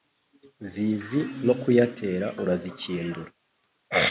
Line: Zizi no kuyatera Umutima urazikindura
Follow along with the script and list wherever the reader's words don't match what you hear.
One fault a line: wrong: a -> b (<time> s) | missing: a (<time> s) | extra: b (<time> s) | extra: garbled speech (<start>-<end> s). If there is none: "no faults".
missing: Umutima (2.3 s)